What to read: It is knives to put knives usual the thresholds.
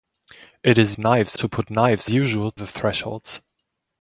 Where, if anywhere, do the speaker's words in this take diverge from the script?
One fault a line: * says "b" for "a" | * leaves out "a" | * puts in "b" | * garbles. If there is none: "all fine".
all fine